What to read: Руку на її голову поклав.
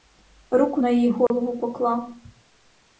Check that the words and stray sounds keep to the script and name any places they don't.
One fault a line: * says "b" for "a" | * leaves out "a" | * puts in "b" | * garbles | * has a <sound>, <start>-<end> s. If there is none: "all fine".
* has a dropout, 1.3-1.3 s